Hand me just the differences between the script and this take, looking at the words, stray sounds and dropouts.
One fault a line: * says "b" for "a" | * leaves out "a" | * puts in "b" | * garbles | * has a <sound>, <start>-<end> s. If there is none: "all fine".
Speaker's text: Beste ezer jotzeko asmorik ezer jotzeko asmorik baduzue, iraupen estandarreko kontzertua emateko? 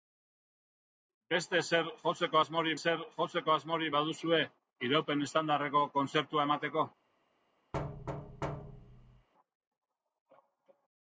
* has a thud, 7.7-9.3 s